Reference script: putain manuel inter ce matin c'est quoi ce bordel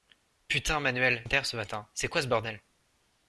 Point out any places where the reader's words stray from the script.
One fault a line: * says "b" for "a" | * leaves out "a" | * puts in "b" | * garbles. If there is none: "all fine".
all fine